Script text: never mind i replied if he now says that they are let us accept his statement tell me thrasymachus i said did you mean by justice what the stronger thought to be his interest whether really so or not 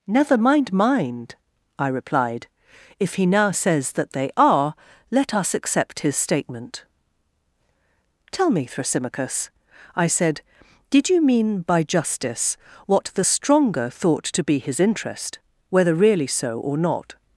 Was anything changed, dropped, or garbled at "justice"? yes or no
no